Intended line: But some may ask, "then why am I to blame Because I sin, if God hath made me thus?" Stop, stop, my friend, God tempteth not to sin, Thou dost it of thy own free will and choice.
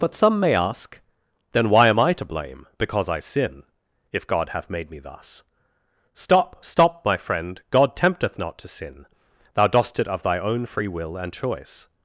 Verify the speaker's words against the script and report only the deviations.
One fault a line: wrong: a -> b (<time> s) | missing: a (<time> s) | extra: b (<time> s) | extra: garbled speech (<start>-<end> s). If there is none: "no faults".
no faults